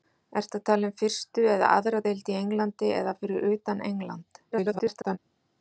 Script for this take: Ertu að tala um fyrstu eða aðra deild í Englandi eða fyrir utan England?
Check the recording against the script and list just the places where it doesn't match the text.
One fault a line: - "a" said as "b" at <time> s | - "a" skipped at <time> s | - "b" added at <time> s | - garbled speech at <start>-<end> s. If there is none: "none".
- garbled speech at 4.5-5.2 s